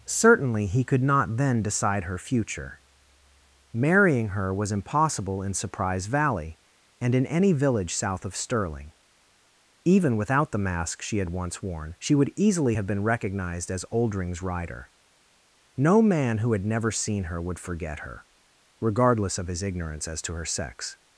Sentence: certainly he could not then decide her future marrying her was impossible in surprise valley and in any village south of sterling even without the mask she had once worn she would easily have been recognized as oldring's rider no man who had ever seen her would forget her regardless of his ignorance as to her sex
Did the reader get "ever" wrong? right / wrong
wrong